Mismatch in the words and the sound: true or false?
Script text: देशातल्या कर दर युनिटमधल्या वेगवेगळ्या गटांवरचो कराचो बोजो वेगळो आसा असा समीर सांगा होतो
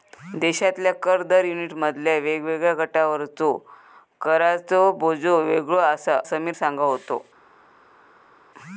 true